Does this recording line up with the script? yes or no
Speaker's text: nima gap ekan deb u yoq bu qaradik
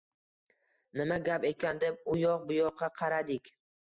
no